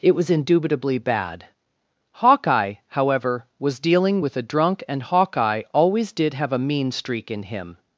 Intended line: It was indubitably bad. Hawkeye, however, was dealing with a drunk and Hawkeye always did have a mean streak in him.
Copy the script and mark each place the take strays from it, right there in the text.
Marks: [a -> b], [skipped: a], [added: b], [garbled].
It was indubitably bad. Hawkeye, however, was dealing with a drunk and Hawkeye always did have a mean streak in him.